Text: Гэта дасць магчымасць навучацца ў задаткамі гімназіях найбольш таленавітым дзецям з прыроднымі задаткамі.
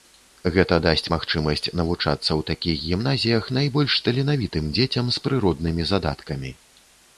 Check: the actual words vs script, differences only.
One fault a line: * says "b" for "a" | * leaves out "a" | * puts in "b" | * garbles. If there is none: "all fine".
* says "такіх" for "задаткамі"